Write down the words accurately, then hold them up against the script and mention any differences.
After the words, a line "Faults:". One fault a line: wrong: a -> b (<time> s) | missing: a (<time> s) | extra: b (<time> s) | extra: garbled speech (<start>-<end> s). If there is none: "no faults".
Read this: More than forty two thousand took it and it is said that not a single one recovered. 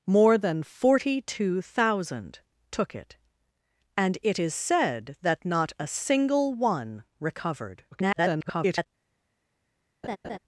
More than forty two thousand took it and it is said that not a single one recovered. [garbled]
Faults:
extra: garbled speech (7.9-8.9 s)